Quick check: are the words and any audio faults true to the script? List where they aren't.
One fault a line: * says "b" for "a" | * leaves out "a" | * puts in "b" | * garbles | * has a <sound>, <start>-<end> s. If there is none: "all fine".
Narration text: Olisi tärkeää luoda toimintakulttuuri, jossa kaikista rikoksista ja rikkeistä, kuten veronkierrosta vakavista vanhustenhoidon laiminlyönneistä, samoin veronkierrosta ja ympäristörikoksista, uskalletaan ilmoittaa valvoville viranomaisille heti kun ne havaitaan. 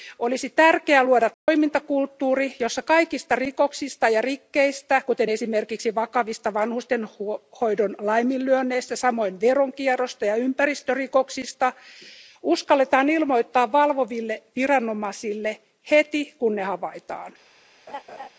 * has a dropout, 1.3-1.5 s
* says "esimerkiksi" for "veronkierrosta"
* has a laugh, 17.9-18.3 s